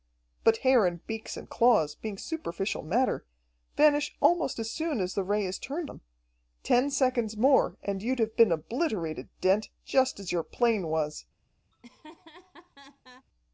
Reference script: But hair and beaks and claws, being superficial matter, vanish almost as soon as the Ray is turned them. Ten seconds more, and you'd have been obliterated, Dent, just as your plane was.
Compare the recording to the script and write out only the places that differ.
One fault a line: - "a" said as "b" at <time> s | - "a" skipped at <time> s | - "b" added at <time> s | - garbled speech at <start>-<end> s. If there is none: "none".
none